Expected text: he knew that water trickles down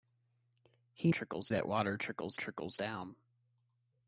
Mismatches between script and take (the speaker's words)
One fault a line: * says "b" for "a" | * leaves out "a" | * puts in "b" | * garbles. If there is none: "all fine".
* says "trickles" for "knew"
* puts in "trickles"